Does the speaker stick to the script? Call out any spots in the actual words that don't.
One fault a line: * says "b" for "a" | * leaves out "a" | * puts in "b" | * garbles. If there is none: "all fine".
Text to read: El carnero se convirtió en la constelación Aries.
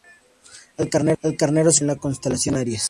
all fine